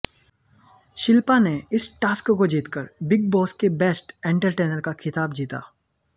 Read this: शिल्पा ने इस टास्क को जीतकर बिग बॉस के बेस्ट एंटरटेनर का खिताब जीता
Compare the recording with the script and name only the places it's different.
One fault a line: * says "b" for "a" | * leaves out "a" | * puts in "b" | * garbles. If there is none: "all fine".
all fine